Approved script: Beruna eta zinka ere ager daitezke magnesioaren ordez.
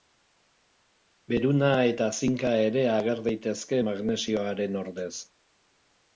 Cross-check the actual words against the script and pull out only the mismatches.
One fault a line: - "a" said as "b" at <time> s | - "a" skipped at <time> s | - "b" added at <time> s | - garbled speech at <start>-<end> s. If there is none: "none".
none